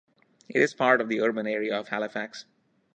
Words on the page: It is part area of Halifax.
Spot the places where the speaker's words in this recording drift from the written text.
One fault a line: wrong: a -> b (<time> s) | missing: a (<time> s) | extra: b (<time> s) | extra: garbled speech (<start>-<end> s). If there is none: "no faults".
extra: of the urban (1.0 s)